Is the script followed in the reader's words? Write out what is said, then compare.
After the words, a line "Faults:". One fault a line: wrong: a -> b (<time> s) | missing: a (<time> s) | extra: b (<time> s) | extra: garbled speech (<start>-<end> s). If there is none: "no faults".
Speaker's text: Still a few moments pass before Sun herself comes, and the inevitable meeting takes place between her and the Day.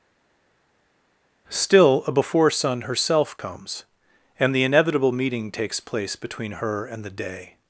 Still a before Sun herself comes, and the inevitable meeting takes place between her and the Day.
Faults:
missing: few moments pass (2.1 s)